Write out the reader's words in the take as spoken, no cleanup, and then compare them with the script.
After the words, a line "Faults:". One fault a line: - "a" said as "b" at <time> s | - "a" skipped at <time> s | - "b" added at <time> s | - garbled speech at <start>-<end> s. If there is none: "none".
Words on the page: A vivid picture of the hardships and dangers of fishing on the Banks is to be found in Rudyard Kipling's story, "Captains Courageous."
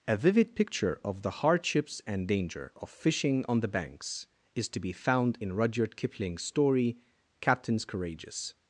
A vivid picture of the hardships and danger of fishing on the Banks is to be found in Rudyard Kipling's story, "Captains Courageous."
Faults:
- "dangers" said as "danger" at 2.3 s